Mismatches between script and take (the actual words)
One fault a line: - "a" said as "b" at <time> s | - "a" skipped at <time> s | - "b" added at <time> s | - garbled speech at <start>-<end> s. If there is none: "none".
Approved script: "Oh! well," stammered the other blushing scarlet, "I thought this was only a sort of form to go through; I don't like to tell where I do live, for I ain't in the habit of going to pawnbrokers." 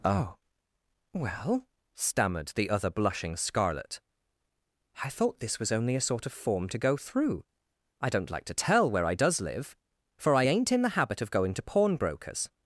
- "do" said as "does" at 9.1 s